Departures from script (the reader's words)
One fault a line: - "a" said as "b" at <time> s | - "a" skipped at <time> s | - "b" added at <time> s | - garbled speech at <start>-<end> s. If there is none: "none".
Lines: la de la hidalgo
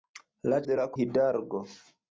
none